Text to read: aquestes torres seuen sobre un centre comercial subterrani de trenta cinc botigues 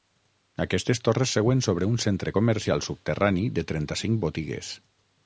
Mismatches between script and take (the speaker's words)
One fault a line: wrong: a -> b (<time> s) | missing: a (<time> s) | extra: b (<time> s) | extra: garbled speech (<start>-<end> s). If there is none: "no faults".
no faults